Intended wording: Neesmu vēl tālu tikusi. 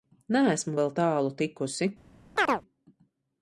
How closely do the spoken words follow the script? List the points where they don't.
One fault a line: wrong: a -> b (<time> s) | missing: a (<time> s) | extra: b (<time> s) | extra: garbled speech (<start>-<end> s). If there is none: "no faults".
no faults